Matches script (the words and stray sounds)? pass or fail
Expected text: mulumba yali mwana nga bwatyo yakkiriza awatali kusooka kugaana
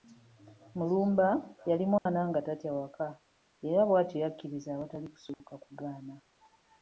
fail